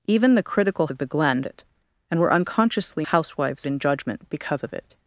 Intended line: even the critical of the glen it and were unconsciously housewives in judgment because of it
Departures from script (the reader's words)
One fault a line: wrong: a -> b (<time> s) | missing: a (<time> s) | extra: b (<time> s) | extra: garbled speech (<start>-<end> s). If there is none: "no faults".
no faults